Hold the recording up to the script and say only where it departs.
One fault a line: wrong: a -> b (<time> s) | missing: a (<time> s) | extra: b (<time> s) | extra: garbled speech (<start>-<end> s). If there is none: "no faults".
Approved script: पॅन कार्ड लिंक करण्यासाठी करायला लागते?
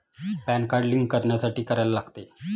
no faults